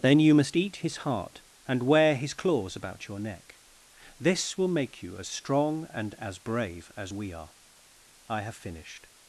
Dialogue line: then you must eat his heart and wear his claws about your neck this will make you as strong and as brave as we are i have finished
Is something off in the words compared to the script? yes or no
no